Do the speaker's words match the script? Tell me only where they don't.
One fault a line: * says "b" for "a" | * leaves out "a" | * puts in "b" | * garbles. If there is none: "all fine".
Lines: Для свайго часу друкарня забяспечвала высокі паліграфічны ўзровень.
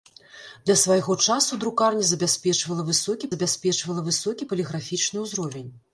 * puts in "забяспечвала высокі"